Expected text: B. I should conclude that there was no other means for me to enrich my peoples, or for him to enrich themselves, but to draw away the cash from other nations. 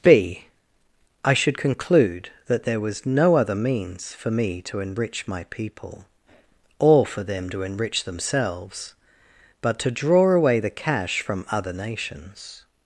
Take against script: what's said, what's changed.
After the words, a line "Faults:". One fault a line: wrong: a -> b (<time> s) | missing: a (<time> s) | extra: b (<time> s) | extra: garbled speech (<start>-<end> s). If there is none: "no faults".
B. I should conclude that there was no other means for me to enrich my people, or for them to enrich themselves, but to draw away the cash from other nations.
Faults:
wrong: peoples -> people (5.5 s)
wrong: him -> them (7.2 s)